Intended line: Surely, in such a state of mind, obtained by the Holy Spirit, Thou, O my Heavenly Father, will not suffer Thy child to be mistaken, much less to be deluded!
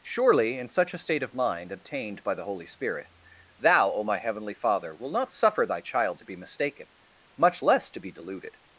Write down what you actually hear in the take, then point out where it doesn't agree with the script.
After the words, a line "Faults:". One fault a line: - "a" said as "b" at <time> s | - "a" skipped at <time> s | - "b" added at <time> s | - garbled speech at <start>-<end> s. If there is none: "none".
Surely, in such a state of mind, obtained by the Holy Spirit, Thou, O my Heavenly Father, will not suffer Thy child to be mistaken, much less to be deluded!
Faults:
none